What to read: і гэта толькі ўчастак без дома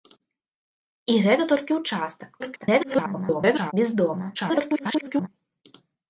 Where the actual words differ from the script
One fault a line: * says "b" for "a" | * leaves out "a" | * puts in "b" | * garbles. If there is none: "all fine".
* garbles
* garbles